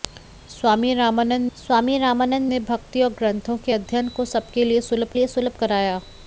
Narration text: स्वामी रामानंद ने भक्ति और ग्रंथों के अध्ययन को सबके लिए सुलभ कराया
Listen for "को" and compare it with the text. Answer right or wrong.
right